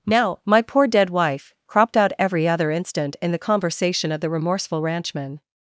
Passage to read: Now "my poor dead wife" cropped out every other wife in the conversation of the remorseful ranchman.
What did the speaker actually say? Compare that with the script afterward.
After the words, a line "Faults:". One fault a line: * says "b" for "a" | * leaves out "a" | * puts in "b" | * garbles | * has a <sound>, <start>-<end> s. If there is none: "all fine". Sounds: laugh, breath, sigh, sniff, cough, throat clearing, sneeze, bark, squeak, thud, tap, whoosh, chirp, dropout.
Now "my poor dead wife" cropped out every other instant in the conversation of the remorseful ranchman.
Faults:
* says "instant" for "wife"